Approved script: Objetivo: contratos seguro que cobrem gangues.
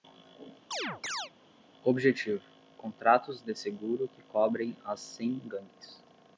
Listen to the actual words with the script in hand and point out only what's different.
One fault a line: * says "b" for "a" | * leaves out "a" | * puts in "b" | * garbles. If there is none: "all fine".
* puts in "de"
* puts in "as cem"